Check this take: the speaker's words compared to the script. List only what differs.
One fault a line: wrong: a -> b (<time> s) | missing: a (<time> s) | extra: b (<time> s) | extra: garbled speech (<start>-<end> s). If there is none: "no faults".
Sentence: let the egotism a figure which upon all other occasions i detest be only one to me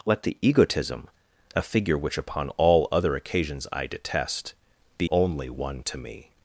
no faults